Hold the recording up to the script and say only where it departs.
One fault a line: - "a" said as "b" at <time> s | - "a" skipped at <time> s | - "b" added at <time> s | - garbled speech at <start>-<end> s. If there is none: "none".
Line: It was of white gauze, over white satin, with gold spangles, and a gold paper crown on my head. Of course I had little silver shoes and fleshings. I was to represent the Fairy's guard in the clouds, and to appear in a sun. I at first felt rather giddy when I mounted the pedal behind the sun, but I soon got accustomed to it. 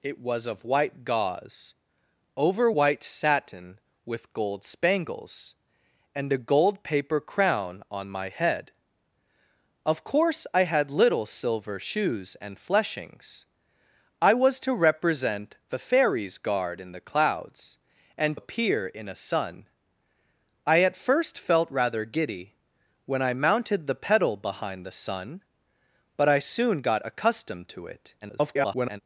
- "to" skipped at 18.4 s
- garbled speech at 28.2-29.0 s